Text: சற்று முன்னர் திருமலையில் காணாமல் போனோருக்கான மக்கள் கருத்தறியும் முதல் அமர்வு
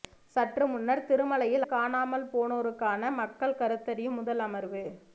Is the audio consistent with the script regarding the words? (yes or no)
yes